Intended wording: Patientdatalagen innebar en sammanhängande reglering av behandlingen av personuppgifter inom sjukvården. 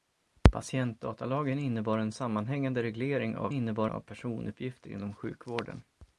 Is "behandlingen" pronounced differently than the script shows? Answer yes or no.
yes